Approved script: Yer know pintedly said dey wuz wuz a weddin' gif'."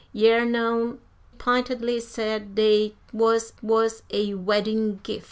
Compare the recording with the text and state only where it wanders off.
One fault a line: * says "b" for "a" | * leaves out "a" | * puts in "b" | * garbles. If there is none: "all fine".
all fine